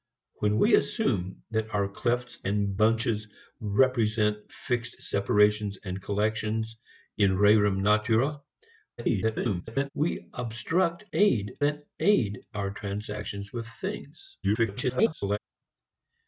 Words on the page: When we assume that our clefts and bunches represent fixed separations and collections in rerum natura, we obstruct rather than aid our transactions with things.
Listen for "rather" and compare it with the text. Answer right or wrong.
wrong